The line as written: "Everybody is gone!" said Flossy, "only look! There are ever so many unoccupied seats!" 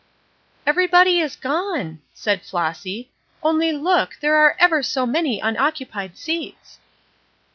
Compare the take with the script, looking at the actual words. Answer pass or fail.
pass